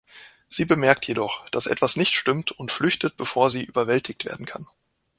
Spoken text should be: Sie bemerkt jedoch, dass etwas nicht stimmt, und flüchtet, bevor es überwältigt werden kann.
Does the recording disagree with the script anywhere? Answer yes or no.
yes